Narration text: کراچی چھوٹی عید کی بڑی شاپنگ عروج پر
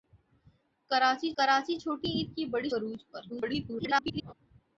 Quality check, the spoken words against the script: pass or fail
fail